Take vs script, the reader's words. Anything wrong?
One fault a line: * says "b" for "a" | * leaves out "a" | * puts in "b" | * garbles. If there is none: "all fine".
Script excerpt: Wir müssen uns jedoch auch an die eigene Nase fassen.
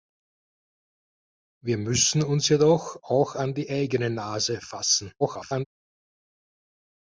* garbles